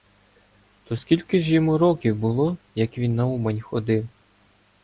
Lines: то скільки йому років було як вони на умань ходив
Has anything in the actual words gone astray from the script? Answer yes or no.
yes